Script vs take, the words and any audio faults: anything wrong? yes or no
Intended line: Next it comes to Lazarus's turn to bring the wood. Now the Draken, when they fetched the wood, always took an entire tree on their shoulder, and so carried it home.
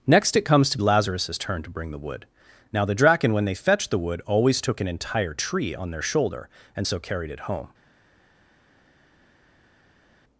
no